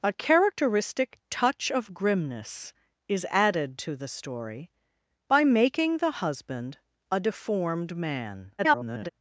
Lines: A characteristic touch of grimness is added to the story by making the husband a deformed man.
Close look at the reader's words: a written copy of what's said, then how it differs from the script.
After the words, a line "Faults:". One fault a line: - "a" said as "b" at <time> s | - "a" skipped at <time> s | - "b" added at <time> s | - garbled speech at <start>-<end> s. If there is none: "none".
A characteristic touch of grimness is added to the story by making the husband a deformed man. [garbled]
Faults:
- garbled speech at 8.6-9.1 s